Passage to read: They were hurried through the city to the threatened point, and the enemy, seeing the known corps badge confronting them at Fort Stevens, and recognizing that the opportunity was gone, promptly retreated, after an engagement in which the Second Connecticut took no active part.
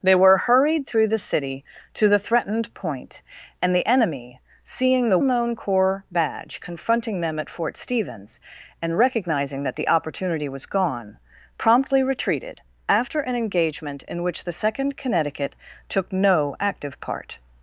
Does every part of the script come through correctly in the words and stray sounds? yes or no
yes